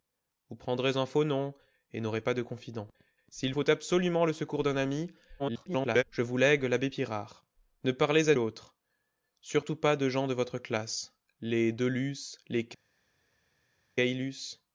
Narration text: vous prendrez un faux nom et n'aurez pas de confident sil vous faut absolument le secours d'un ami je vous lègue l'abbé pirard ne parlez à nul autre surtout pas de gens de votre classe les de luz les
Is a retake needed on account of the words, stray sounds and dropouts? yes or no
yes